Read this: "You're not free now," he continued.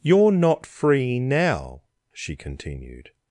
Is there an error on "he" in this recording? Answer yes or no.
yes